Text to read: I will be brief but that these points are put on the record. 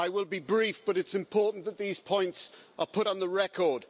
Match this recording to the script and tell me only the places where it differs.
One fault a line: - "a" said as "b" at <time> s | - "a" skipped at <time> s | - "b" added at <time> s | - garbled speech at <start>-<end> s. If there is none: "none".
- "it's important" added at 1.0 s